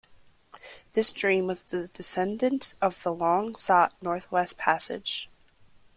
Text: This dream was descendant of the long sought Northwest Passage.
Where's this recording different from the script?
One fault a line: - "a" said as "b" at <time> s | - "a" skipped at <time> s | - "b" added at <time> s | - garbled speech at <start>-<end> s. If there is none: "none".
- "the" added at 1.6 s